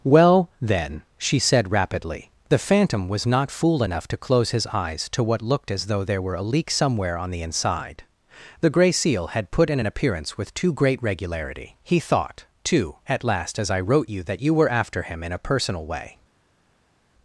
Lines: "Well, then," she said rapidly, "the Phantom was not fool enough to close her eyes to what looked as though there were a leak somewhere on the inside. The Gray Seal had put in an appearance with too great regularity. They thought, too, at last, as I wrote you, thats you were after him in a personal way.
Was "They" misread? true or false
true